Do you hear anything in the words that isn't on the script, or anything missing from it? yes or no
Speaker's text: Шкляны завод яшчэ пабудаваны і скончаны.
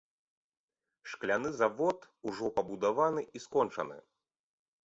yes